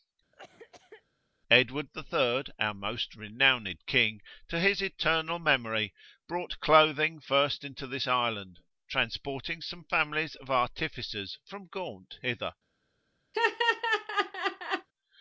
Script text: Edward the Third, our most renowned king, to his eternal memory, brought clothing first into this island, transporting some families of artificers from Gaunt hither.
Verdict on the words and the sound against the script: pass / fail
fail